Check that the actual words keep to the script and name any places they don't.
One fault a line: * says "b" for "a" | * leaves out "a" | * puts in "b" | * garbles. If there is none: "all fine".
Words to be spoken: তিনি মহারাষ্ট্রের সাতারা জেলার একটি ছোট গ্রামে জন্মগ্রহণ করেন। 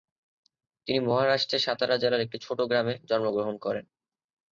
all fine